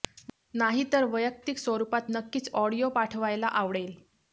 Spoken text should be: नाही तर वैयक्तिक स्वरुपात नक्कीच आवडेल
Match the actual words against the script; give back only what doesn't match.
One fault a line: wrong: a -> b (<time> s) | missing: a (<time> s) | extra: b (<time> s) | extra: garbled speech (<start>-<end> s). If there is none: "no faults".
extra: ऑडिओ पाठवायला (2.5 s)